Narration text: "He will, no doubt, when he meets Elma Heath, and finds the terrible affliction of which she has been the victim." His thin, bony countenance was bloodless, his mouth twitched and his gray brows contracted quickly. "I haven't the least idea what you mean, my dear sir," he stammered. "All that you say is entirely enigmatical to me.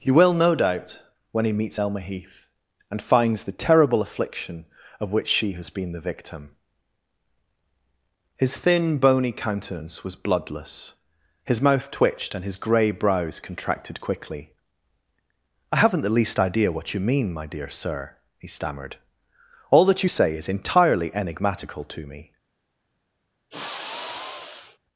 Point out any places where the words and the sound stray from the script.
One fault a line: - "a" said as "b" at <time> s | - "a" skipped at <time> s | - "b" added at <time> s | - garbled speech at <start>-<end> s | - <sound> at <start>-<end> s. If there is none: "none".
- sigh at 23.5-24.8 s